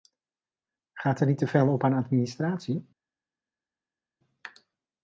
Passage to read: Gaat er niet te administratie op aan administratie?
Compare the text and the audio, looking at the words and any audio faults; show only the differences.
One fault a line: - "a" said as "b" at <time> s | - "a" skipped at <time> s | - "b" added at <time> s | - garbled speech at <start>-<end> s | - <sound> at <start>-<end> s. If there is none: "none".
- "administratie" said as "veel" at 1.5 s